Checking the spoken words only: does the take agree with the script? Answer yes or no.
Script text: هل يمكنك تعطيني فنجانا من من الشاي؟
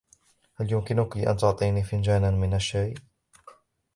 no